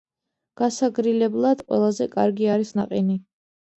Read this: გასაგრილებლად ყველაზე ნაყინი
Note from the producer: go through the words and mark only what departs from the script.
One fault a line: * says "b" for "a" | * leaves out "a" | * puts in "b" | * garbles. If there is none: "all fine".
* puts in "კარგი არის"